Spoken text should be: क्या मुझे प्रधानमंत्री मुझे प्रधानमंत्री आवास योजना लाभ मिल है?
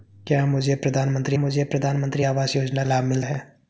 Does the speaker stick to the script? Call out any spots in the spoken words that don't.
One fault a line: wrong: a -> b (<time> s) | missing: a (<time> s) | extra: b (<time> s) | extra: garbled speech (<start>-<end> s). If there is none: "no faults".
no faults